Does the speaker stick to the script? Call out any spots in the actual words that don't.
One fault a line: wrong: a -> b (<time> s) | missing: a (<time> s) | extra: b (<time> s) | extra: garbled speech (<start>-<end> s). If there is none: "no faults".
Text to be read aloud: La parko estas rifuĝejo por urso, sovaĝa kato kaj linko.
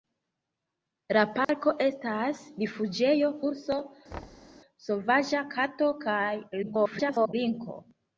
missing: por (3.3 s)
extra: garbled speech (6.6-7.3 s)